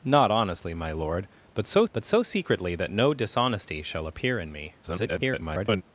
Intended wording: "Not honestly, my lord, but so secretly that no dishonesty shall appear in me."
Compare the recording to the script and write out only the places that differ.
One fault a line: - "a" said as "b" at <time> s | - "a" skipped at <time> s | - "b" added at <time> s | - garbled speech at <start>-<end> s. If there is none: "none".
- "but so" added at 1.9 s
- garbled speech at 4.8-5.8 s